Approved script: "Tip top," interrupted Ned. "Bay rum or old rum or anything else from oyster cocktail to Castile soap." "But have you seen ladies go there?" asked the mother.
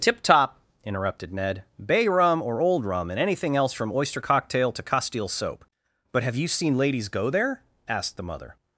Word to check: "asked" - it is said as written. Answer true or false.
true